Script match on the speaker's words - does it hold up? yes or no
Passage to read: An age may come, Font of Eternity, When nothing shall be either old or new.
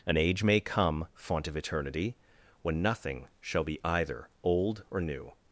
yes